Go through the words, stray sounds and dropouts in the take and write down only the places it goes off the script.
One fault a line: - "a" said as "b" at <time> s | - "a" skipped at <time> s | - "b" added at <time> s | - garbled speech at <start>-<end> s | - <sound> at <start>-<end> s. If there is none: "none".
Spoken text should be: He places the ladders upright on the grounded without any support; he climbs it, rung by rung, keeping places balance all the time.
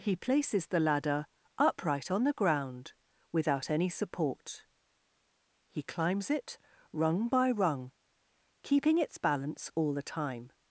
- "ladders" said as "ladder" at 0.8 s
- "grounded" said as "ground" at 2.3 s
- "places" said as "its" at 9.0 s